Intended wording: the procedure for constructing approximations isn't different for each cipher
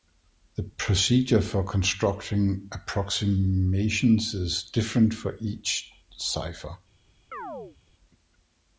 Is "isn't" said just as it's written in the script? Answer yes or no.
no